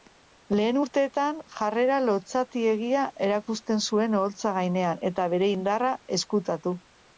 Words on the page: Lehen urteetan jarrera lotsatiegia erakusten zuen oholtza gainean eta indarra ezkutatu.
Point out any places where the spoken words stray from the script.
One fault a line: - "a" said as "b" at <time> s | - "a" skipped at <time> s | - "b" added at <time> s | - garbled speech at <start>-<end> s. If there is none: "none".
- "bere" added at 5.4 s